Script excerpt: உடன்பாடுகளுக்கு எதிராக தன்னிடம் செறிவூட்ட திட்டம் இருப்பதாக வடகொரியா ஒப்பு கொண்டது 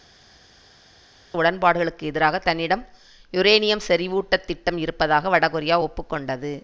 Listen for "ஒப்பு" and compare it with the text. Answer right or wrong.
right